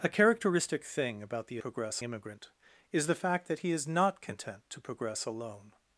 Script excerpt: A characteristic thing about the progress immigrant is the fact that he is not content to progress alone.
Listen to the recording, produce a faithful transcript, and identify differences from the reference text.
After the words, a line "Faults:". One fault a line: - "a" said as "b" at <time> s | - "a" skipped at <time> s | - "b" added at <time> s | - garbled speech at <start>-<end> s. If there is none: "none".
A characteristic thing about the progress immigrant is the fact that he is not content to progress alone.
Faults:
none